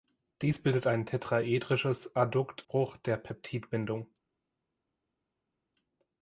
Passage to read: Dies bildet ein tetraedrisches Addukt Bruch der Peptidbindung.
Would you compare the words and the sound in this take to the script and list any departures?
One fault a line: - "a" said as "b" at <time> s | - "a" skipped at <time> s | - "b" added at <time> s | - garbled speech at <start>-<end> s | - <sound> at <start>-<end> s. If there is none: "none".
none